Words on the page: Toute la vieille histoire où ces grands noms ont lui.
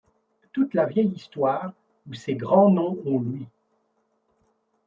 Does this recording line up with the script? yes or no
yes